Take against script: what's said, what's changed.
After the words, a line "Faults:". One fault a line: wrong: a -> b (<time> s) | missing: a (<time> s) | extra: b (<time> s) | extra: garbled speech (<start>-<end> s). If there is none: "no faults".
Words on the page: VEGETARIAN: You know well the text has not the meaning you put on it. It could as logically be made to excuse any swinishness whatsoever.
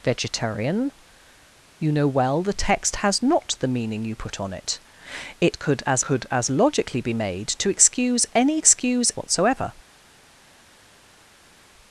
VEGETARIAN: You know well the text has not the meaning you put on it. It could as could as logically be made to excuse any excuse whatsoever.
Faults:
extra: could as (6.0 s)
wrong: swinishness -> excuse (8.6 s)